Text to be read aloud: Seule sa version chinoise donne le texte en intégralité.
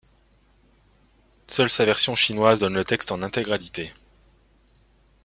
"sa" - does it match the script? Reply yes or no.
yes